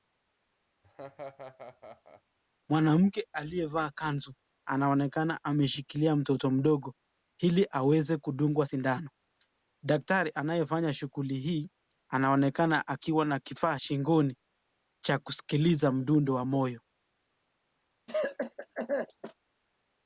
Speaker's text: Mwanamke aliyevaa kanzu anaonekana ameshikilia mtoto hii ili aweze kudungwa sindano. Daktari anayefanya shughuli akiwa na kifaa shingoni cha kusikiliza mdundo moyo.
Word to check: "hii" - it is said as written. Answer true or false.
false